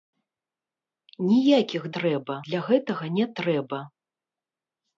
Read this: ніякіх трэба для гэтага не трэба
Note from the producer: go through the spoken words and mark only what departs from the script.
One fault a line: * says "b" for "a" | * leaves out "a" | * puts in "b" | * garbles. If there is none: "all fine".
all fine